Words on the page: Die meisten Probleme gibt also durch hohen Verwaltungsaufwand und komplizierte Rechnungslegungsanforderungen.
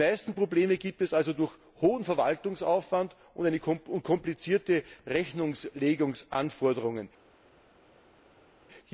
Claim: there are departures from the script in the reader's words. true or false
true